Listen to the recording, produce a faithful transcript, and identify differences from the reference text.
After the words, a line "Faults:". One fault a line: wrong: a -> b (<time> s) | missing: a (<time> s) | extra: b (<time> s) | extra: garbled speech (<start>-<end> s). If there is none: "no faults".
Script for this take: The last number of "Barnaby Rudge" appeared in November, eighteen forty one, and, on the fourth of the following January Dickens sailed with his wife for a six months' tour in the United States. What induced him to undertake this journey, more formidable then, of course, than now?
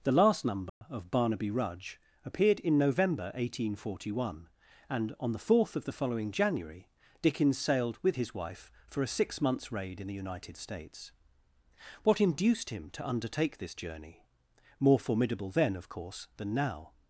The last number of "Barnaby Rudge" appeared in November, eighteen forty one, and, on the fourth of the following January Dickens sailed with his wife for a six months' raid in the United States. What induced him to undertake this journey, more formidable then, of course, than now?
Faults:
wrong: tour -> raid (9.7 s)